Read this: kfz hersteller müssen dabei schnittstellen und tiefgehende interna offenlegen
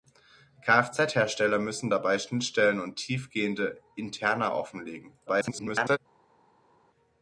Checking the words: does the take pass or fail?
fail